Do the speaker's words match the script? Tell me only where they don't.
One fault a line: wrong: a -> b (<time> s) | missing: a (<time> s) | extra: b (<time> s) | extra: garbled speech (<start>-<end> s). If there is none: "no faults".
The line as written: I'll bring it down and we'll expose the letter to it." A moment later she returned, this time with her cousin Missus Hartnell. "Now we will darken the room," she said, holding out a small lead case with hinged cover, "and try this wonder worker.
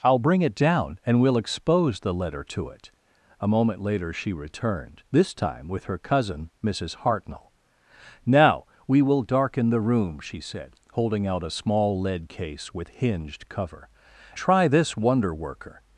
missing: and (13.9 s)